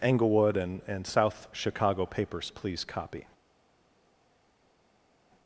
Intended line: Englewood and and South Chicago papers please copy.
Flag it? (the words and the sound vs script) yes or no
no